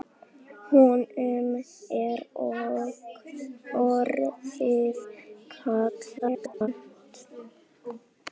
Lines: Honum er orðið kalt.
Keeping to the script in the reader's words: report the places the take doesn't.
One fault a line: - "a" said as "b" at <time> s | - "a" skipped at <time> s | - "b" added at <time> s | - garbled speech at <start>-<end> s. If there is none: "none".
- garbled speech at 6.2-6.7 s